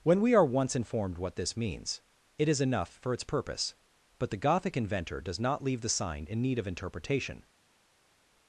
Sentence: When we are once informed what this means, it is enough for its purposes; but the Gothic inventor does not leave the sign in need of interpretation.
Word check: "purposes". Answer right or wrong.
wrong